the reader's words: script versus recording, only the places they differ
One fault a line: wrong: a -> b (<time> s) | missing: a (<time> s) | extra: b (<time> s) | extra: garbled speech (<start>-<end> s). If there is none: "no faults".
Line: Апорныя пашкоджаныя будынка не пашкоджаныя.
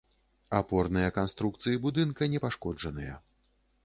wrong: пашкоджаныя -> канструкцыі (1.2 s)